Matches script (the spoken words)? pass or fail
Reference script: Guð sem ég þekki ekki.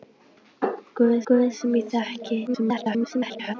fail